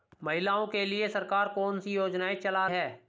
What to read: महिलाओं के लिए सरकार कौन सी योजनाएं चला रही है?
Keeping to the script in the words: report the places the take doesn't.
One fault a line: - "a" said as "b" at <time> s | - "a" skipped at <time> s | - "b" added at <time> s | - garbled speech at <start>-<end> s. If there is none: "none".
- "रही" skipped at 2.7 s